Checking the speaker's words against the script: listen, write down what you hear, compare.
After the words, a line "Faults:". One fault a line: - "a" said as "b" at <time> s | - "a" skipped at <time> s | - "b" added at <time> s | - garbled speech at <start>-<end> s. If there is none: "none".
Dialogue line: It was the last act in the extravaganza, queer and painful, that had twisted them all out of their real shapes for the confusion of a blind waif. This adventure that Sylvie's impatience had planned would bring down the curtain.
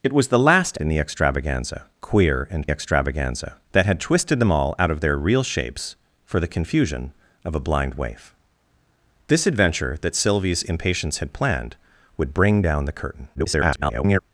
It was the last in the extravaganza, queer and extravaganza, that had twisted them all out of their real shapes for the confusion of a blind waif. This adventure that Sylvie's impatience had planned would bring down the curtain. [garbled]
Faults:
- "act" skipped at 0.8 s
- "painful" said as "extravaganza" at 2.7 s
- garbled speech at 13.3-14.2 s